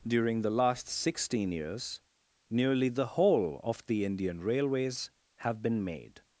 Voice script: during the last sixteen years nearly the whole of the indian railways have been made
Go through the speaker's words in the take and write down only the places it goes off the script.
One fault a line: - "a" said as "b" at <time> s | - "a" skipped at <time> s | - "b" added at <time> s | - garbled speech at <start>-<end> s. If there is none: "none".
none